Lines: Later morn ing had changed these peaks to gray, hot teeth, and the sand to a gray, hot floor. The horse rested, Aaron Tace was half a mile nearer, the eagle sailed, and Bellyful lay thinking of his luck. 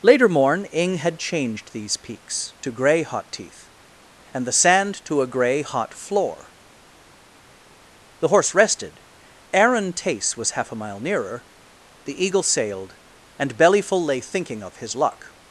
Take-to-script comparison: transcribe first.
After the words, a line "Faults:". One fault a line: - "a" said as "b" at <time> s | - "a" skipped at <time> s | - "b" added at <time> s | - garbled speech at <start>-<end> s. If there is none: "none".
Later morn ing had changed these peaks to gray, hot teeth, and the sand to a gray, hot floor. The horse rested, Aaron Tace was half a mile nearer, the eagle sailed, and Bellyful lay thinking of his luck.
Faults:
none